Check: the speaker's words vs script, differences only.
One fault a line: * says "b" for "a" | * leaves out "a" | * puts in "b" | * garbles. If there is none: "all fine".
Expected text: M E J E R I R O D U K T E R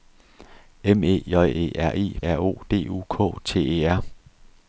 all fine